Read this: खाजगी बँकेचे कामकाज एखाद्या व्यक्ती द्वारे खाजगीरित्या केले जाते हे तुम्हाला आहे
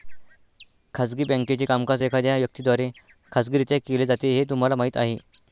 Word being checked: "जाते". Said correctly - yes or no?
yes